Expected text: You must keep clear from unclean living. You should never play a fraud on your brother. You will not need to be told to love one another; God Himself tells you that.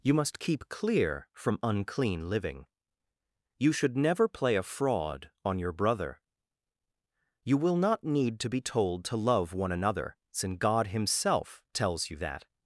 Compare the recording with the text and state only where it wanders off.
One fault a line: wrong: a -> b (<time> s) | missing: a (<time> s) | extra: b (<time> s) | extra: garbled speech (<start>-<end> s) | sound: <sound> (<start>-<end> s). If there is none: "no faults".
extra: since (10.3 s)